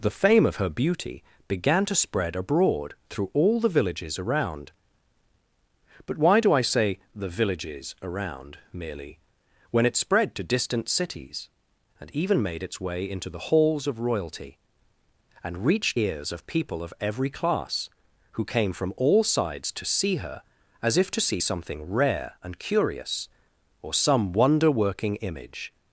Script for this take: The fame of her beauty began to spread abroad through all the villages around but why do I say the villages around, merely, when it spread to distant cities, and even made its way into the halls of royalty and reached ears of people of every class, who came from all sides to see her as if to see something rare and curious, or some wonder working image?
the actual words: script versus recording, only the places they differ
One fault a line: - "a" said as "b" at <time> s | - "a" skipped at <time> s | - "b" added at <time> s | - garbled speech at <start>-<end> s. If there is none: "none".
none